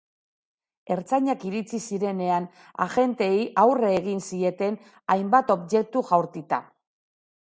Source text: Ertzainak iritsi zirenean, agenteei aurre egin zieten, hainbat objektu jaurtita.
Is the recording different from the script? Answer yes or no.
no